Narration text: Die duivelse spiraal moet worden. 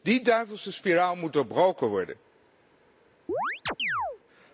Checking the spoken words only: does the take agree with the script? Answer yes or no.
no